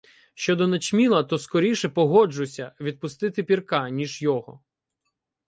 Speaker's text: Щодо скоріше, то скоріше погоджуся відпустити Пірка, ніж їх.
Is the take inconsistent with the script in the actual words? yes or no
yes